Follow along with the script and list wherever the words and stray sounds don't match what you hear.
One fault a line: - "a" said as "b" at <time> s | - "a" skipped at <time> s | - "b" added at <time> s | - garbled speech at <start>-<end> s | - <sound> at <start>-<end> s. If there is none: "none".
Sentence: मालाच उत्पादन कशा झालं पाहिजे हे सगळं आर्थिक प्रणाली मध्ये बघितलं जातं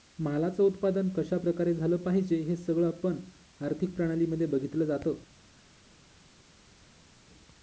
- "प्रकारे" added at 1.4 s
- "पण" added at 3.0 s